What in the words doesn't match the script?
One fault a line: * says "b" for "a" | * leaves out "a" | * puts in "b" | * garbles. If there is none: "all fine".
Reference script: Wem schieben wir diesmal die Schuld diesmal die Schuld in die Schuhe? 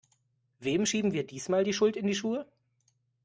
* leaves out "diesmal die Schuld"